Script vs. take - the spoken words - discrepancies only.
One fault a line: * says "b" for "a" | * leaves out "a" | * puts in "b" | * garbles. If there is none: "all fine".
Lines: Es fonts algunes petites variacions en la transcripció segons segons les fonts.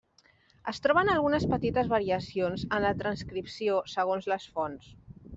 * says "troben" for "fonts"
* leaves out "segons"